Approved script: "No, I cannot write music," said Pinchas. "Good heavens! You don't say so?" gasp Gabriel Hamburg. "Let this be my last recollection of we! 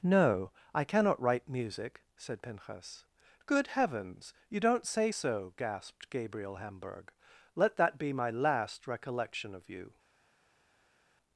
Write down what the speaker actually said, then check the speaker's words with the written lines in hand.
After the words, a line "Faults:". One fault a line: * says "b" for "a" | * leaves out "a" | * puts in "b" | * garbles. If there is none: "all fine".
"No, I cannot write music," said Pinchas. "Good heavens! You don't say so?" gasped Gabriel Hamburg. "Let that be my last recollection of you!
Faults:
* says "gasped" for "gasp"
* says "that" for "this"
* says "you" for "we"